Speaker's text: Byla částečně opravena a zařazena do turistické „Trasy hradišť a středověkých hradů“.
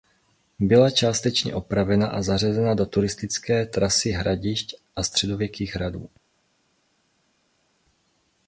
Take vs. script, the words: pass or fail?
pass